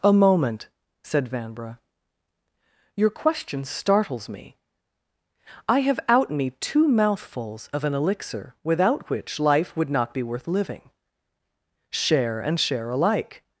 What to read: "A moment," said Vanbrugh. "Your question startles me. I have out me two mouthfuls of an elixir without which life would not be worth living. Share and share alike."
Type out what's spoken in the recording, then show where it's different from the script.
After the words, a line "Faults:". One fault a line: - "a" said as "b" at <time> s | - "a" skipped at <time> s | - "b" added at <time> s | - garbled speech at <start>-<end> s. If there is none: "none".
"A moment," said Vanbrugh. "Your question startles me. I have out me two mouthfuls of an elixir without which life would not be worth living. Share and share alike."
Faults:
none